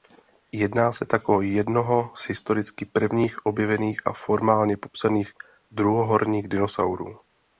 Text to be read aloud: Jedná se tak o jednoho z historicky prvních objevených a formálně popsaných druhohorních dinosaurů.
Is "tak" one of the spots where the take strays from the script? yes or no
no